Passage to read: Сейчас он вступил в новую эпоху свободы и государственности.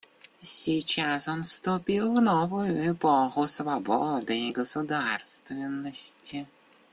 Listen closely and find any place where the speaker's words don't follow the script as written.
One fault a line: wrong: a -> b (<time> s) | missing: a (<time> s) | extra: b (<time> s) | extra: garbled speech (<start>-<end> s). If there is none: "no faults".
no faults